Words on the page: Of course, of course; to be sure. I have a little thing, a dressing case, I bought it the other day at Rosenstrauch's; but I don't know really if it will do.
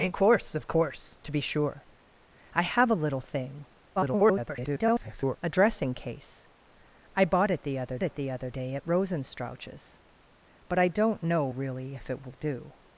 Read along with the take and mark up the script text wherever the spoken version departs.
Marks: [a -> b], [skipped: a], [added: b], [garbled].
Of course, of course; to be sure. I have a little thing, [garbled] a dressing case, I bought it the other [added: it the other] day at Rosenstrauch's; but I don't know really if it will do.